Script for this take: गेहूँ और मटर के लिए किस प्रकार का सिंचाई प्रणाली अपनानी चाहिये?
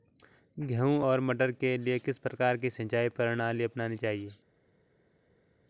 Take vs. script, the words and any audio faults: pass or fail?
fail